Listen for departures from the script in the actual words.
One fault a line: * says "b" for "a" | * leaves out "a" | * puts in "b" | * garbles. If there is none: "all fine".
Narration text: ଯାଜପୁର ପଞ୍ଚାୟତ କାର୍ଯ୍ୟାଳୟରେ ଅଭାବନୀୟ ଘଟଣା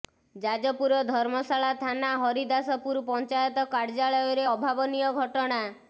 * puts in "ଧର୍ମଶାଳା ଥାନା ହରିଦାସପୁର"